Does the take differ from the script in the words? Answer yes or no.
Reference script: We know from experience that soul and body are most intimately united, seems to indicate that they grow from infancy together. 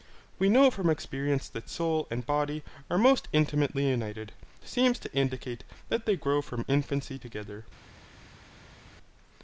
no